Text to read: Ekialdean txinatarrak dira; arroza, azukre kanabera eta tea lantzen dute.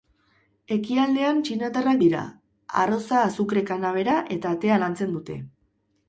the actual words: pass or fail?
pass